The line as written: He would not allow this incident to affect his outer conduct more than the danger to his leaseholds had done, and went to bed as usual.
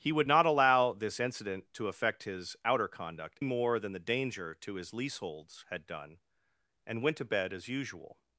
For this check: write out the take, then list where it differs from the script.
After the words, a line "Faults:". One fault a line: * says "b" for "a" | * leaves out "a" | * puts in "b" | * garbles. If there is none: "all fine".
He would not allow this incident to affect his outer conduct more than the danger to his leaseholds had done, and went to bed as usual.
Faults:
all fine